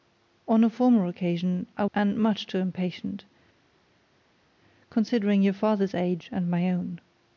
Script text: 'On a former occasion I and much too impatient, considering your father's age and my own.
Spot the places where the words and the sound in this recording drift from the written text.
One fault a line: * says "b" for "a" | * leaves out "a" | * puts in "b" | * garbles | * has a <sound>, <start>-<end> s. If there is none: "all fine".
all fine